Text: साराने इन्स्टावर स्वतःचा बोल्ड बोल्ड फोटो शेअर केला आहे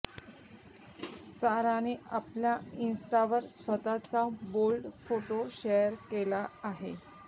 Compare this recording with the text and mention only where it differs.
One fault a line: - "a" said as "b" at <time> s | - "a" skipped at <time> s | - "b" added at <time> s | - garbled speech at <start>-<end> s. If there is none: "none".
- "आपल्या" added at 2.1 s
- "बोल्ड" skipped at 4.9 s